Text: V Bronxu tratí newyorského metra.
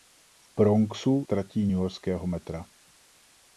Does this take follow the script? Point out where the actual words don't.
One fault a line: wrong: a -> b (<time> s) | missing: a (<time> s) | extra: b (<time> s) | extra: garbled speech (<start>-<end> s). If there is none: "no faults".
no faults